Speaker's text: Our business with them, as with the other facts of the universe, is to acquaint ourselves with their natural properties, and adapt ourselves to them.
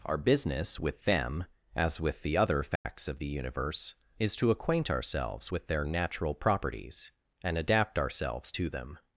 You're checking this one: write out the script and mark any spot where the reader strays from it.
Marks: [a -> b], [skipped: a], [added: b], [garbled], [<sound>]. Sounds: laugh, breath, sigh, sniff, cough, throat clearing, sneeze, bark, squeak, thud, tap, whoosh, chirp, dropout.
Our business with them, as with the other facts [dropout] of the universe, is to acquaint ourselves with their natural properties, and adapt ourselves to them.